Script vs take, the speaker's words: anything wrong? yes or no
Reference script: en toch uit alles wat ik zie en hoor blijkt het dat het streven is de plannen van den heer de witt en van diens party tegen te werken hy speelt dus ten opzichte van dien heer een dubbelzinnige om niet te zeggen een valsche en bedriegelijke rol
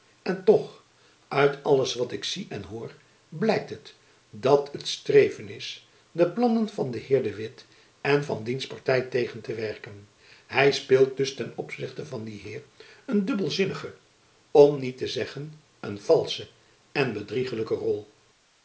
no